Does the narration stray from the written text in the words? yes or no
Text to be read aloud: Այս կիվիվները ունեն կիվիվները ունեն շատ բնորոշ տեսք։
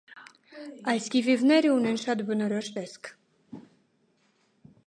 yes